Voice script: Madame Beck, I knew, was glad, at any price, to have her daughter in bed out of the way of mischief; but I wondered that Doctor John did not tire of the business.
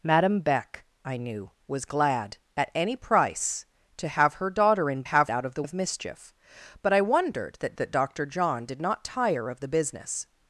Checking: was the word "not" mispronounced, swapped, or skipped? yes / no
no